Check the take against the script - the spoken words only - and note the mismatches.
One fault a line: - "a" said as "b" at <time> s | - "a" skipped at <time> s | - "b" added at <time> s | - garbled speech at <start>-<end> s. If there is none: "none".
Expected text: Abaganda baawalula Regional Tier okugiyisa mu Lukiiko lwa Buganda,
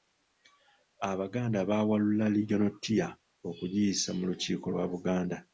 none